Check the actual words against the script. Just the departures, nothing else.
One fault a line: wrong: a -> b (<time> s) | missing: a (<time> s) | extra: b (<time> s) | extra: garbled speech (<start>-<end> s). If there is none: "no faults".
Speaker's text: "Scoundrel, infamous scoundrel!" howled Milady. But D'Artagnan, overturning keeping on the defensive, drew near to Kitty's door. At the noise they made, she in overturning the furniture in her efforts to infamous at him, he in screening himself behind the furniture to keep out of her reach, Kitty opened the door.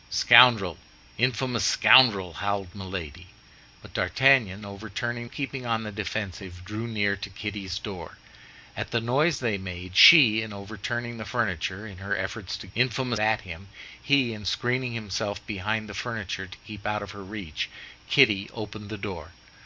no faults